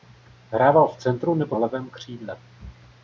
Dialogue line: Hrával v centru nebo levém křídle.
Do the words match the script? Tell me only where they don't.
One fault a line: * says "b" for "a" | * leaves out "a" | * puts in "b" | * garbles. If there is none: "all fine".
all fine